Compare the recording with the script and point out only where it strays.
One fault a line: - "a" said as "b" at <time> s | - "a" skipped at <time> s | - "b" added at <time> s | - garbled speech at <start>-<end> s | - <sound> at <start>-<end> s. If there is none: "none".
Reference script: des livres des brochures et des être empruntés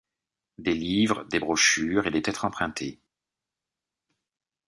none